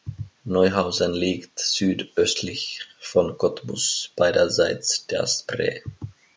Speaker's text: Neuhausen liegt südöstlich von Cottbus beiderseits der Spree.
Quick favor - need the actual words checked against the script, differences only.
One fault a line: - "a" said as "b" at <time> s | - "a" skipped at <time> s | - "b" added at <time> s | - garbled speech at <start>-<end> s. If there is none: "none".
none